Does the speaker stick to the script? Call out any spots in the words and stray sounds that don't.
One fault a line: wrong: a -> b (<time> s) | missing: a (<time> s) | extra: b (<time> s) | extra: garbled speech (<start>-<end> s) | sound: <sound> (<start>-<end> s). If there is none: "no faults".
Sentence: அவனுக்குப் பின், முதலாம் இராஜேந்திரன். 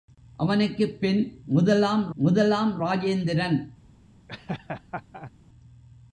extra: முதலாம் (2.1 s)
sound: laugh (4.3-5.3 s)